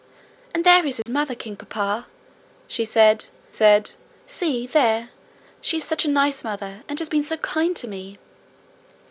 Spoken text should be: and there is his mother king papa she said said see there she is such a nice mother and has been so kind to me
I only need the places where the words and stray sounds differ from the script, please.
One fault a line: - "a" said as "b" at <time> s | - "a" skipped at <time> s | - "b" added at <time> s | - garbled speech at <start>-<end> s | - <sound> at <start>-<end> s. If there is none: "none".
- dropout at 1.0-1.1 s